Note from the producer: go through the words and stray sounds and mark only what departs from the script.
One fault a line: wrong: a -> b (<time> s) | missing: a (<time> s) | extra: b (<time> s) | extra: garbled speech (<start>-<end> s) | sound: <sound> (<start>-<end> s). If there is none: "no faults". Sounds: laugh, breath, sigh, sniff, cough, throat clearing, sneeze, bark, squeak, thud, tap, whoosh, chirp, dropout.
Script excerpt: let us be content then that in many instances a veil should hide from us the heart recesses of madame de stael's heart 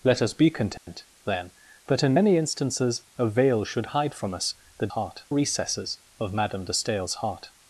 sound: dropout (0.8-0.9 s)